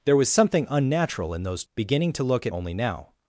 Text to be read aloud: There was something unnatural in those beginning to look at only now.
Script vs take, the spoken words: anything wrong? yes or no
no